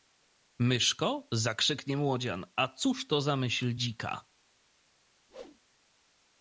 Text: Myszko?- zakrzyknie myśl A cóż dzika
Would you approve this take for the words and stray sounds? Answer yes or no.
no